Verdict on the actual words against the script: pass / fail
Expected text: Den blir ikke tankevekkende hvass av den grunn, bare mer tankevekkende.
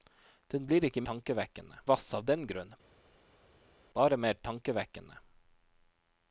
pass